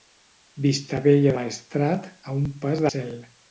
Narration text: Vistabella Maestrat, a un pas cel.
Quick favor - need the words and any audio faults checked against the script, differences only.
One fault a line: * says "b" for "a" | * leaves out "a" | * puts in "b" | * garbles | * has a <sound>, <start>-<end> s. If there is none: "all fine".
all fine